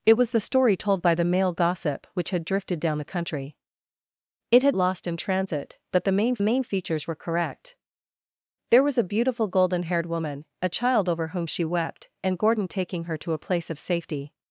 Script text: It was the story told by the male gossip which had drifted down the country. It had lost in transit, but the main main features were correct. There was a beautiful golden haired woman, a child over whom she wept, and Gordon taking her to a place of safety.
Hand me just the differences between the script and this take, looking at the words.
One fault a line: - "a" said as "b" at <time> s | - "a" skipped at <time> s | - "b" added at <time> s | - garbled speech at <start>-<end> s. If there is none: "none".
none